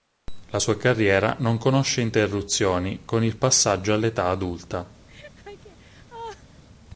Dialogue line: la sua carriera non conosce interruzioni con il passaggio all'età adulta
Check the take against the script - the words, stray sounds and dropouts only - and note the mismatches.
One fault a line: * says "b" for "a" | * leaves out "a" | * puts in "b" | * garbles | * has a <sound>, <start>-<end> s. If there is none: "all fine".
* has a laugh, 5.1-6.6 s